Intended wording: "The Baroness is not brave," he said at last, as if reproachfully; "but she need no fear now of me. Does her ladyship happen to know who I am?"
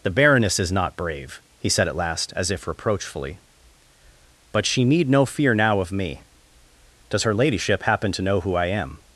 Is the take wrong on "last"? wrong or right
right